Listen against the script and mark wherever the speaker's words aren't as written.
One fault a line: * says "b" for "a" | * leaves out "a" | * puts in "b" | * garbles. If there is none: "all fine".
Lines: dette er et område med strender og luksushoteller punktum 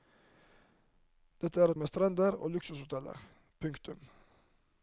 * leaves out "et område"